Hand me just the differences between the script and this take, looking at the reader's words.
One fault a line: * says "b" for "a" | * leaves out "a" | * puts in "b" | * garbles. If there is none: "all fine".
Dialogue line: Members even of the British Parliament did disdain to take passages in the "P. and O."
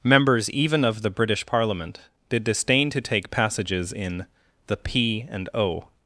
all fine